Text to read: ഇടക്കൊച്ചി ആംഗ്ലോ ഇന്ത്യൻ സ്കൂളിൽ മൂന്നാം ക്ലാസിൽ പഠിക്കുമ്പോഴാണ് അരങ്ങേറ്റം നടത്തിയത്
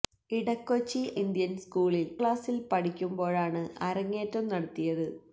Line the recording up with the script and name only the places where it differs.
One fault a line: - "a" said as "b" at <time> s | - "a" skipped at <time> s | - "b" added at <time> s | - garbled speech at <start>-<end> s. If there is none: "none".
- "ആംഗ്ലോ" skipped at 1.0 s
- "മൂന്നാം" skipped at 2.1 s